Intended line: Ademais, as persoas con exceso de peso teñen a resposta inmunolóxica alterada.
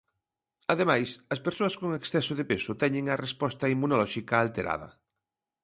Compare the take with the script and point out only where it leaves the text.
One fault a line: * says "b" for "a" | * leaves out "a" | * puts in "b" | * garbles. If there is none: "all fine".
all fine